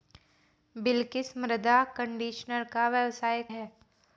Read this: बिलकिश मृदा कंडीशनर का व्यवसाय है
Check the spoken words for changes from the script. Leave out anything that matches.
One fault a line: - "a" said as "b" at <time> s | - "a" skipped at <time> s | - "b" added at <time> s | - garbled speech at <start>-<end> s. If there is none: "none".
none